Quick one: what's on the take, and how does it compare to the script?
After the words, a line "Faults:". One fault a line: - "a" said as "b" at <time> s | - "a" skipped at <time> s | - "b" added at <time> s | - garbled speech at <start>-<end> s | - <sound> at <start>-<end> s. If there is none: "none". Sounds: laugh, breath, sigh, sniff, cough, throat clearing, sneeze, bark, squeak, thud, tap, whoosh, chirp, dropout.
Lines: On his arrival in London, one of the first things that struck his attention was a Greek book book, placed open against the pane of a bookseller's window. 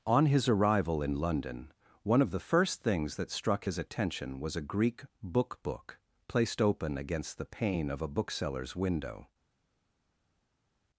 On his arrival in London, one of the first things that struck his attention was a Greek book book, placed open against the pane of a bookseller's window.
Faults:
none